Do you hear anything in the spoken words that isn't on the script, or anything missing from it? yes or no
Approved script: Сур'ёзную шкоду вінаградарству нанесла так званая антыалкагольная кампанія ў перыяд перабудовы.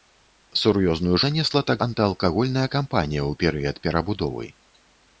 yes